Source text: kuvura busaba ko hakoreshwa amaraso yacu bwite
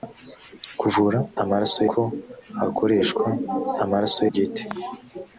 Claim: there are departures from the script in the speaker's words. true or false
true